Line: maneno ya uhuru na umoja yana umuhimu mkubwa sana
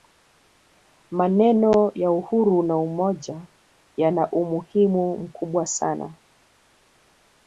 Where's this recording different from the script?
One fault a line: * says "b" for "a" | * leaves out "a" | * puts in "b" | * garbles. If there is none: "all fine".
all fine